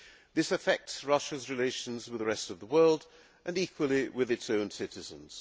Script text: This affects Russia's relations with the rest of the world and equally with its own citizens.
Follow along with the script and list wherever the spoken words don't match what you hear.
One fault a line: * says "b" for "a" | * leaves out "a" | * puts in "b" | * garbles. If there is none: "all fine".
all fine